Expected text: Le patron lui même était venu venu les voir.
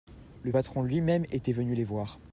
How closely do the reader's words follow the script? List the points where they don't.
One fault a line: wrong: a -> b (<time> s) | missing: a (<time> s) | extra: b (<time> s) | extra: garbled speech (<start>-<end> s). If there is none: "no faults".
missing: venu (1.7 s)